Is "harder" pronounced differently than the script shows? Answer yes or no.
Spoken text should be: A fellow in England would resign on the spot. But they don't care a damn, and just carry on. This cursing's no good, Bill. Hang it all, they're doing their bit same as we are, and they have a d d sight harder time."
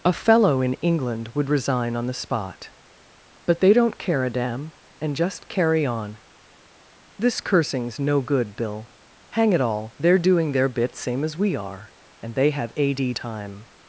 yes